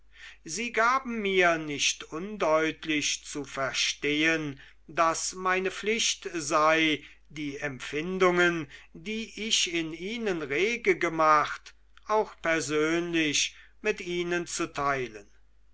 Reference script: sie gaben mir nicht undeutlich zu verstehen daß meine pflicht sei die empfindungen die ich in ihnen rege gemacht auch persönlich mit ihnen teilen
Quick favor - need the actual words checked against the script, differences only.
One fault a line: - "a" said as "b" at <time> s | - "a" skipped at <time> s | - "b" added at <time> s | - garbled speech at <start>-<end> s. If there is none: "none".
- "zu" added at 14.5 s